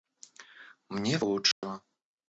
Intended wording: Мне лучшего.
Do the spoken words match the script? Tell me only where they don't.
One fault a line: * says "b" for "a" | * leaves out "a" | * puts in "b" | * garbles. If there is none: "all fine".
all fine